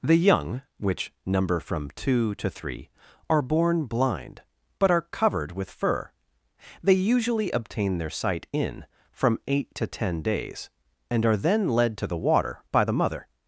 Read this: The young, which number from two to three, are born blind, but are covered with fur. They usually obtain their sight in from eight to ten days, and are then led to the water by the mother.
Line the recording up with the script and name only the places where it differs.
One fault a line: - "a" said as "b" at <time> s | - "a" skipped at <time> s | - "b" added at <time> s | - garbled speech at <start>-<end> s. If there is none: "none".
none